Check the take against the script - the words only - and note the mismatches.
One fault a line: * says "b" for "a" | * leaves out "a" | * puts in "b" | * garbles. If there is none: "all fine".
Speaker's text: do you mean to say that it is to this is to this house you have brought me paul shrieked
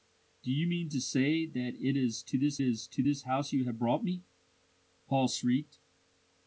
all fine